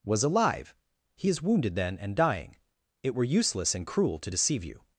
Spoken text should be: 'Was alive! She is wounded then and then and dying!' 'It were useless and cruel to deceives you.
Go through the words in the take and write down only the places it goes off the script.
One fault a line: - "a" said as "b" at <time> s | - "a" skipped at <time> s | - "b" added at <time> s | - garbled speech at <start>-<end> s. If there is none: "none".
- "She" said as "He" at 1.1 s
- "then and" skipped at 2.2 s
- "deceives" said as "deceive" at 4.3 s